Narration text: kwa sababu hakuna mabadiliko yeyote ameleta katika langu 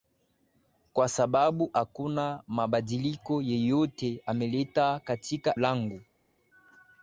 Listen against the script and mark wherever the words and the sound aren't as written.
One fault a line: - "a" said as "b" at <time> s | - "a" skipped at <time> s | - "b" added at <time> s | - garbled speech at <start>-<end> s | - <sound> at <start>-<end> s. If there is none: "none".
none